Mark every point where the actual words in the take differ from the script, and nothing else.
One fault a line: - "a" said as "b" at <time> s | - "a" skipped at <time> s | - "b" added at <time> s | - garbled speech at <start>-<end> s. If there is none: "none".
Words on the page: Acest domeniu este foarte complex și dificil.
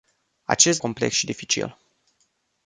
- "domeniu este foarte" skipped at 0.8 s